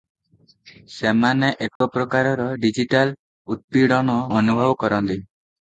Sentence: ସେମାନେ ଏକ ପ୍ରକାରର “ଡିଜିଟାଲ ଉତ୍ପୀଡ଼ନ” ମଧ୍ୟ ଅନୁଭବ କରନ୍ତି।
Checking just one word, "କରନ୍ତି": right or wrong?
right